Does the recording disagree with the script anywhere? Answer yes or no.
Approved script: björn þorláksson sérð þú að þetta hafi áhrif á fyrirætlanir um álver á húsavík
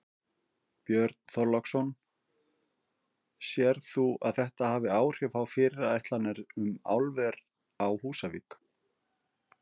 no